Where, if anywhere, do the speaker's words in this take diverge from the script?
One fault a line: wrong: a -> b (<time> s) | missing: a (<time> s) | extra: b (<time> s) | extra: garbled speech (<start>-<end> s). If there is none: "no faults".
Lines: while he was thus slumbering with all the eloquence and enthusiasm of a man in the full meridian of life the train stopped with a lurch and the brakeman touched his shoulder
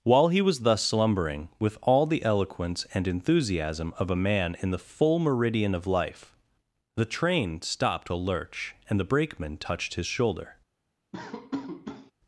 missing: with (8.1 s)